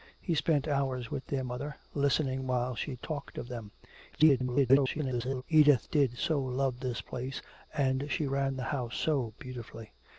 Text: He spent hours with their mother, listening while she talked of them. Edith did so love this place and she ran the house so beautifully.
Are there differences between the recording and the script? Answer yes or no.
yes